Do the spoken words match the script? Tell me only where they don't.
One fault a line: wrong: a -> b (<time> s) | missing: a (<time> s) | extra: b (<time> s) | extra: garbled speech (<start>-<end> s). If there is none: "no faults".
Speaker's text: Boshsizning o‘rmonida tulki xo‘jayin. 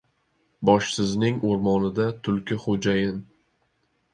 no faults